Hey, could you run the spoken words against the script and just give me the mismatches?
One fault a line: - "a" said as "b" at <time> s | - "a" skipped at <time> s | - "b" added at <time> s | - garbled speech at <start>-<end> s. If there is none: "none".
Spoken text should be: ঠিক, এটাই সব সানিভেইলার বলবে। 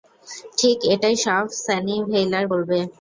none